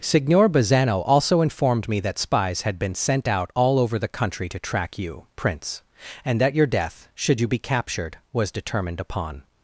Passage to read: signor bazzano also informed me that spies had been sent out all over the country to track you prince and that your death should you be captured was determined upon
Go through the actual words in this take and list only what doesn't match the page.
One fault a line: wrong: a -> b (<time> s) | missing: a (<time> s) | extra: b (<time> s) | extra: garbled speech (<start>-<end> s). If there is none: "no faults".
no faults